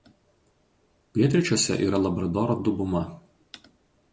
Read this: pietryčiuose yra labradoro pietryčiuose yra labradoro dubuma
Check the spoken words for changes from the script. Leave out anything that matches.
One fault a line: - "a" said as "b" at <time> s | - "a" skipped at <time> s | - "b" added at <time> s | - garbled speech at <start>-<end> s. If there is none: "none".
- "pietryčiuose yra labradoro" skipped at 2.5 s